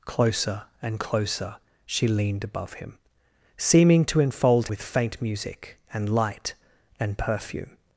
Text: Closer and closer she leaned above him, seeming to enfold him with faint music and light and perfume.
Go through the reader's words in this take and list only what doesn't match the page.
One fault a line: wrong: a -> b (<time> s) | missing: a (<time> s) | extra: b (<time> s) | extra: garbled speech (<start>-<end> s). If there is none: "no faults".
missing: him (4.7 s)